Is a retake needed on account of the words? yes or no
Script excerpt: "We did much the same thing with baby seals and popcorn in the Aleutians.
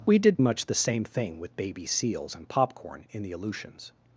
no